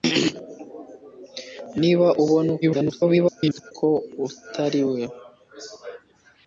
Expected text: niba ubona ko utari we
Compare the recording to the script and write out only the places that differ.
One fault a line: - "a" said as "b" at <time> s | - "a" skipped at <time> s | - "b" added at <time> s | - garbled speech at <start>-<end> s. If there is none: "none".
- garbled speech at 2.6-3.7 s